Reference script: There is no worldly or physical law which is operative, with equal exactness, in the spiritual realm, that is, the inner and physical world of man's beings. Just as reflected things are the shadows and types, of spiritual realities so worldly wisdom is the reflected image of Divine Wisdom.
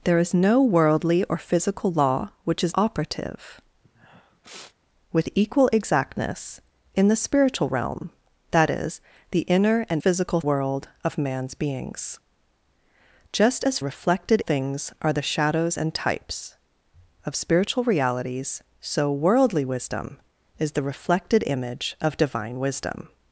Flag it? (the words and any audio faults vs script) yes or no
yes